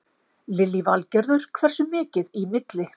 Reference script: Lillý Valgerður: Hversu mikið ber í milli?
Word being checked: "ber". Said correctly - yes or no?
no